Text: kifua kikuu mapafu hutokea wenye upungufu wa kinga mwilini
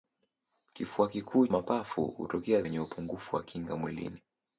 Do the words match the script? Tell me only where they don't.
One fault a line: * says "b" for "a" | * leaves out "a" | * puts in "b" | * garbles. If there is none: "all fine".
all fine